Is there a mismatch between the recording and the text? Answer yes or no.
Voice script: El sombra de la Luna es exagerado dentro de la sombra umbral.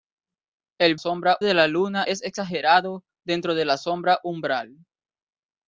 no